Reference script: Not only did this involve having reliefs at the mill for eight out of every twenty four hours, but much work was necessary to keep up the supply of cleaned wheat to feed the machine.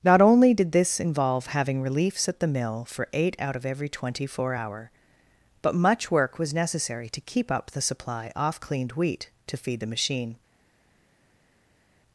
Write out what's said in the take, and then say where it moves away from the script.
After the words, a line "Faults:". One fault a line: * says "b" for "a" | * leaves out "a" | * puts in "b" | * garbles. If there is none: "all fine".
Not only did this involve having reliefs at the mill for eight out of every twenty four hour, but much work was necessary to keep up the supply off cleaned wheat to feed the machine.
Faults:
* says "hour" for "hours"
* says "off" for "of"